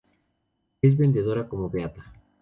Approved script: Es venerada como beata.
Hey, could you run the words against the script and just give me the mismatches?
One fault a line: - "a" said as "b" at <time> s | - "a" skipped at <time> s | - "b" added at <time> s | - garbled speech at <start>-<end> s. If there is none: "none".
none